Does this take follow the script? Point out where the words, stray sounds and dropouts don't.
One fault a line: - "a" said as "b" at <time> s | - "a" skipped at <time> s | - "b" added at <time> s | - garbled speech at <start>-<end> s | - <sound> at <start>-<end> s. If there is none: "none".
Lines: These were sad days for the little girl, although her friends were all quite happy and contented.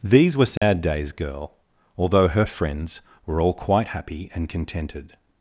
- dropout at 0.6-0.6 s
- "for the little" skipped at 1.1 s